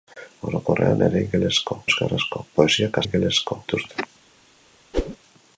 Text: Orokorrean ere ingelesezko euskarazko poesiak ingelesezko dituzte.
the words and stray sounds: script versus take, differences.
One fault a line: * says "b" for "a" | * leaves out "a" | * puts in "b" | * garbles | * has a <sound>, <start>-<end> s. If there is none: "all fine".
* has a whoosh, 4.9-5.2 s